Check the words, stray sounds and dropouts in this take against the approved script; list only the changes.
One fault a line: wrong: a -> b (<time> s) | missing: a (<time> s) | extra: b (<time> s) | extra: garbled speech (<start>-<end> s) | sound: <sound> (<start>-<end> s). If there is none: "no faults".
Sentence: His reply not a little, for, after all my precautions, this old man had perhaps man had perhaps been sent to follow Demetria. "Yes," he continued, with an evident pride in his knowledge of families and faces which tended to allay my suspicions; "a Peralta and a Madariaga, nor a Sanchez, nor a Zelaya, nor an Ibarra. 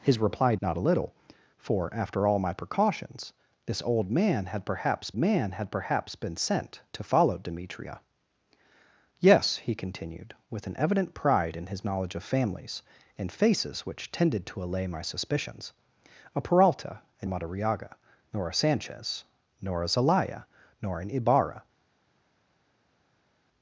no faults